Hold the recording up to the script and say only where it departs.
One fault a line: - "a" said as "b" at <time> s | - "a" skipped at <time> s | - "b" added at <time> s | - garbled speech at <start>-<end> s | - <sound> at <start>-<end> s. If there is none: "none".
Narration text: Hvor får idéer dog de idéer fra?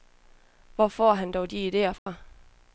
- "idéer" said as "han" at 1.1 s
- dropout at 2.0-2.1 s